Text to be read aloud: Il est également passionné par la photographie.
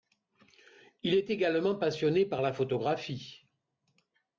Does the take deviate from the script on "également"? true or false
false